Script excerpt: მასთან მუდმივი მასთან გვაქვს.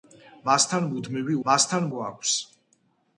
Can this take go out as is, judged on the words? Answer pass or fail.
pass